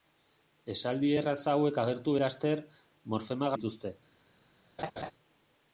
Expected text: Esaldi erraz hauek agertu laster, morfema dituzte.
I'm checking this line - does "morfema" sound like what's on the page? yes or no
yes